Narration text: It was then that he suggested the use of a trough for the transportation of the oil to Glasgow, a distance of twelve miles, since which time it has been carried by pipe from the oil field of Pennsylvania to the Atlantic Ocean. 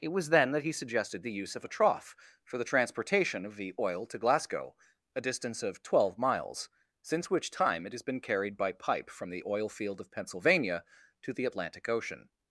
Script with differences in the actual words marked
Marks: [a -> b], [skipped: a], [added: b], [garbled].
It was then that he suggested the use of a trough for the transportation of the oil to Glasgow, a distance of twelve miles, since which time it has been carried by pipe from the oil field of Pennsylvania to the Atlantic Ocean.